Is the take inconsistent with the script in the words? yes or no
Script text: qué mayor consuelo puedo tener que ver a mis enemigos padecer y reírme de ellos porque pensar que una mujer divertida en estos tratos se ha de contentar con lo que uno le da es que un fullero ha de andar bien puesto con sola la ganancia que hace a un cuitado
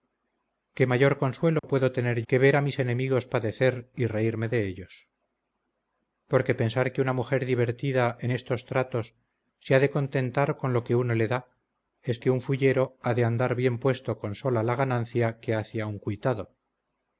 no